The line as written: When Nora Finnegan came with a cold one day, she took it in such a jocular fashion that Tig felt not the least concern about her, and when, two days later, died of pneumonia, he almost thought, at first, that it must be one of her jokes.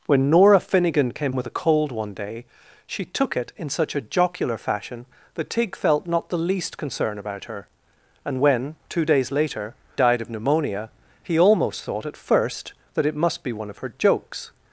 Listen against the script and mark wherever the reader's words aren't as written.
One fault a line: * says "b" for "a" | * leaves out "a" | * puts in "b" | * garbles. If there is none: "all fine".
all fine